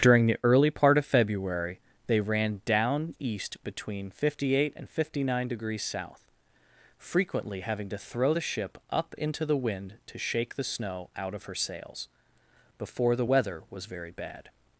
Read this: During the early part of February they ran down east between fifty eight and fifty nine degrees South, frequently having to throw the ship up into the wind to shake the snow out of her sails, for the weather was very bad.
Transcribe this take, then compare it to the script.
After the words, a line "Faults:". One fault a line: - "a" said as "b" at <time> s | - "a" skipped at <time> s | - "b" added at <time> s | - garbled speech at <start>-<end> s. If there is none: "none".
During the early part of February they ran down east between fifty eight and fifty nine degrees South, frequently having to throw the ship up into the wind to shake the snow out of her sails, before the weather was very bad.
Faults:
- "for" said as "before" at 12.8 s